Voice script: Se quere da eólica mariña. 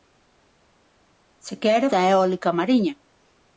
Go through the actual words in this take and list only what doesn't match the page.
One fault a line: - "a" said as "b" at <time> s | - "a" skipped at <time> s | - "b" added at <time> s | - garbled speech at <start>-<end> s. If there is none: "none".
none